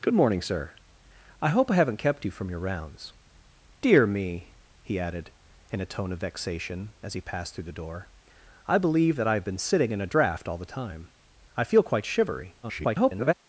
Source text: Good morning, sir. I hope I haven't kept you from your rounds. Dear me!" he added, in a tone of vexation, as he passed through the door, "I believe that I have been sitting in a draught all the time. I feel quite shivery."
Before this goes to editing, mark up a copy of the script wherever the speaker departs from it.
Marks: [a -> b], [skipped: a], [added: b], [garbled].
Good morning, sir. I hope I haven't kept you from your rounds. Dear me!" he added, in a tone of vexation, as he passed through the door, "I believe that I have been sitting in a draught all the time. I feel quite shivery." [garbled]